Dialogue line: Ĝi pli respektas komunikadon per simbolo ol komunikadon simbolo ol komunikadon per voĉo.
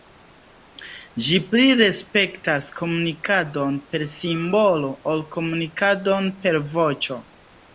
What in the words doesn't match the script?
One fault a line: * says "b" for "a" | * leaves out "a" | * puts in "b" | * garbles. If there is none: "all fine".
* leaves out "simbolo ol komunikadon"